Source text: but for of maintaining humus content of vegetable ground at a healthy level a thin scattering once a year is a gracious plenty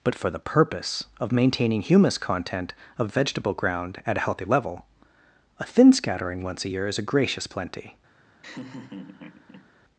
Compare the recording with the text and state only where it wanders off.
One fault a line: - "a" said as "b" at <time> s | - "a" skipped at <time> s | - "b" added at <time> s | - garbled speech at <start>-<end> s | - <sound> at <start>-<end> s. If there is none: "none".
- "the purpose" added at 0.3 s
- laugh at 8.4-9.7 s